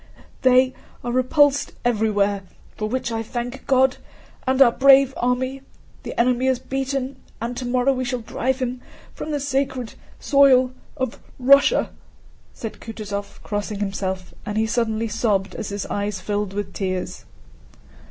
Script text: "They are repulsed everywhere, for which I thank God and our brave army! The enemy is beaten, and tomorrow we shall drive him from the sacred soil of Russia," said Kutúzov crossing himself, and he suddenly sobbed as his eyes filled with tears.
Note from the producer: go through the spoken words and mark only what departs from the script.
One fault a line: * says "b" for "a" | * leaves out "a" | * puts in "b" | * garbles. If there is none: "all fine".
all fine